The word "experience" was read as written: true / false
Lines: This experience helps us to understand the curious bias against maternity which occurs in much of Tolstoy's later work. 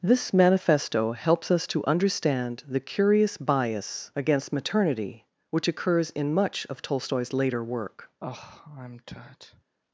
false